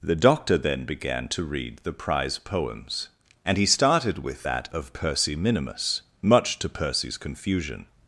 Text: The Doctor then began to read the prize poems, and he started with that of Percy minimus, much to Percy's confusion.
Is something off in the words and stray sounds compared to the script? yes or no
no